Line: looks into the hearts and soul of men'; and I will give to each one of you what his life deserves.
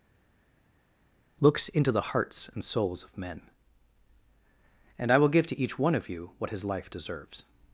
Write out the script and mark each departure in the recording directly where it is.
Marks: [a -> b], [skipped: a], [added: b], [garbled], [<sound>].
looks into the hearts and [soul -> souls] of men'; and I will give to each one of you what his life deserves.